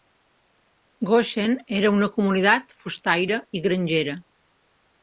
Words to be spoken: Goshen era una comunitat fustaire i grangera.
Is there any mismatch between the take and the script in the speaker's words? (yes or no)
no